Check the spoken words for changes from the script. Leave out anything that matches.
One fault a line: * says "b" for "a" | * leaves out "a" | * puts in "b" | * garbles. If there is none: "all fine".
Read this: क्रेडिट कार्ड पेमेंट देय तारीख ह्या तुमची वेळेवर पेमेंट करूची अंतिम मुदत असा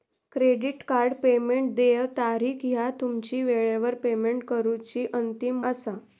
* leaves out "मुदत"